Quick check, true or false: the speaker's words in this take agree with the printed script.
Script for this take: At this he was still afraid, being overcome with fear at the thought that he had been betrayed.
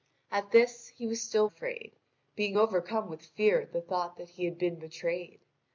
true